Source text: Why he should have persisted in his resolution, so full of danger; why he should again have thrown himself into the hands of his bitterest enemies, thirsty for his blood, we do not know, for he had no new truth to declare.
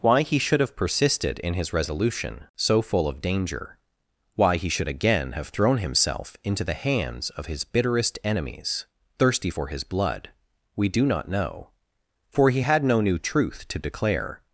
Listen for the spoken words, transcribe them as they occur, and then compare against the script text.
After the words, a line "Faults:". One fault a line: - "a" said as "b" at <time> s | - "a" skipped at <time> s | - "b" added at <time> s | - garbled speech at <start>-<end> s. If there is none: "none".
Why he should have persisted in his resolution, so full of danger; why he should again have thrown himself into the hands of his bitterest enemies, thirsty for his blood, we do not know, for he had no new truth to declare.
Faults:
none